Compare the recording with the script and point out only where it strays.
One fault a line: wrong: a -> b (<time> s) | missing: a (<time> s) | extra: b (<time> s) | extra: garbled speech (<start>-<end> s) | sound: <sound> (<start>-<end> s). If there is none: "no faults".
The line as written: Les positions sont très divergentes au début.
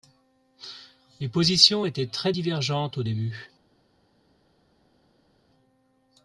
wrong: sont -> étaient (1.8 s)